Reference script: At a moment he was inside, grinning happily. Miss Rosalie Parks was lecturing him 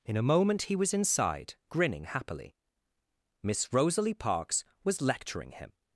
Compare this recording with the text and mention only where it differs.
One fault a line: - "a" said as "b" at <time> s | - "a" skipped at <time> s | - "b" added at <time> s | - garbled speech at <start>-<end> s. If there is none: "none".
- "At" said as "In" at 0.1 s